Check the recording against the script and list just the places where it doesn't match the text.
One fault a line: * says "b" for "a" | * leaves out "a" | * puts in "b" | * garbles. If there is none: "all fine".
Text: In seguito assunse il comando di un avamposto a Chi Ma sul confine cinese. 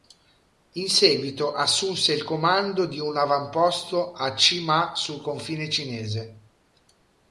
all fine